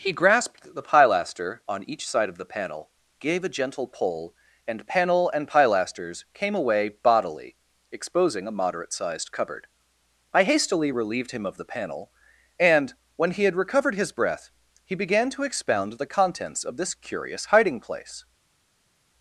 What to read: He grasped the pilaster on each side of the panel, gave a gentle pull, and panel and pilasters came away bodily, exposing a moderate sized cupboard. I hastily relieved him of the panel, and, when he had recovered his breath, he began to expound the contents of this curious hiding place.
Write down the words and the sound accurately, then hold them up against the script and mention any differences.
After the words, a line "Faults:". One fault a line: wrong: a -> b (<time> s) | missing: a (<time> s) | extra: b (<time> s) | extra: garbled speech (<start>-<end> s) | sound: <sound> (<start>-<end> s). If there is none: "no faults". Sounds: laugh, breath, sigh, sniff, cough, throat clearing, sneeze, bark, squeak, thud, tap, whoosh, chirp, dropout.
He grasped the pilaster on each side of the panel, gave a gentle pull, and panel and pilasters came away bodily, exposing a moderate sized cupboard. I hastily relieved him of the panel, and, when he had recovered his breath, he began to expound the contents of this curious hiding place.
Faults:
no faults